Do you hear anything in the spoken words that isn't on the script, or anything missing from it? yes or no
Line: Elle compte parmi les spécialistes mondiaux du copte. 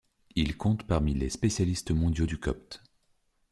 yes